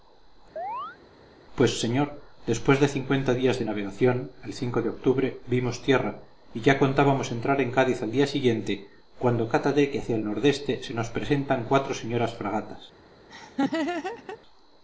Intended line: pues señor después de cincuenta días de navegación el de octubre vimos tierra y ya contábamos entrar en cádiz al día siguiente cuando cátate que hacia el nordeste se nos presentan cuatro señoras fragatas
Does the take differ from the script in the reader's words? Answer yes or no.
no